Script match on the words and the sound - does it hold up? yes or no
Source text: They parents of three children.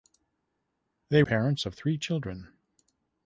yes